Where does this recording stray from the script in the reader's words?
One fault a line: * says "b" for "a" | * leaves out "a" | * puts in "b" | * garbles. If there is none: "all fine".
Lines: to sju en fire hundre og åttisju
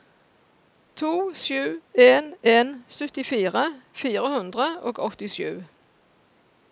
* puts in "en syttifire"